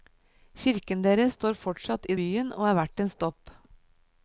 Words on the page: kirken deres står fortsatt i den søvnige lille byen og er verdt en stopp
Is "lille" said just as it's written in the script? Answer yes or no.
no